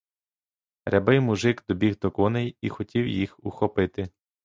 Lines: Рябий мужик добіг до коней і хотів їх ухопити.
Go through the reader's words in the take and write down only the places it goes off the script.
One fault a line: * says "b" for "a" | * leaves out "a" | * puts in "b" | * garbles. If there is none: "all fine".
all fine